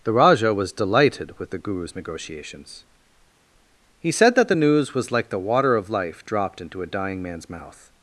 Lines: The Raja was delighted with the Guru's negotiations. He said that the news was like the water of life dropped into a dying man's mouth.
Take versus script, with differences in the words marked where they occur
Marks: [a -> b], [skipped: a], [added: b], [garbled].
The Raja was delighted with the Guru's negotiations. He said that the news was like the water of life dropped into a dying man's mouth.